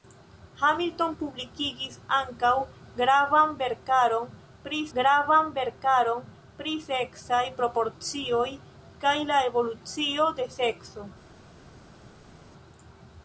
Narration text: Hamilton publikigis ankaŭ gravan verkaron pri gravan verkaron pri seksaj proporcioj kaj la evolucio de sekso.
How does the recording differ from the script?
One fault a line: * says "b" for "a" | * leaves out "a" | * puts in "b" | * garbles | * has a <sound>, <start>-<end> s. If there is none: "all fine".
all fine